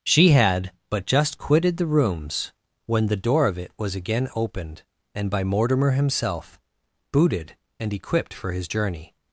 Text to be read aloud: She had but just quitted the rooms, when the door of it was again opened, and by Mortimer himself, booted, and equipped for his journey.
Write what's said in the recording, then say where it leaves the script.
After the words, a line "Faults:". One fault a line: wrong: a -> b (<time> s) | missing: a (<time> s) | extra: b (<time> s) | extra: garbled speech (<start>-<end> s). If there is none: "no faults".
She had but just quitted the rooms, when the door of it was again opened, and by Mortimer himself, booted, and equipped for his journey.
Faults:
no faults